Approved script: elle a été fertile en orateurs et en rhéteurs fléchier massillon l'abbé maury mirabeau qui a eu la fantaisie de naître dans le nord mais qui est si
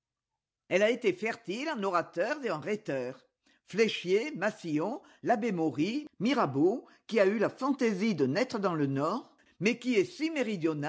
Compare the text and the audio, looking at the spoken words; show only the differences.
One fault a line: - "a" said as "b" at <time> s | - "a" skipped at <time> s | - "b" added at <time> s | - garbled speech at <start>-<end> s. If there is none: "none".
none